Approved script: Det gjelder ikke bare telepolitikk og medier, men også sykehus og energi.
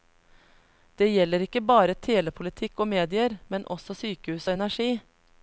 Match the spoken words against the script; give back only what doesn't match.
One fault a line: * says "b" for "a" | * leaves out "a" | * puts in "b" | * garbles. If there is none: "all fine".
all fine